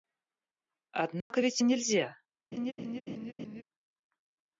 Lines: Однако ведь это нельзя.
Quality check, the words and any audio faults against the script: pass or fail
fail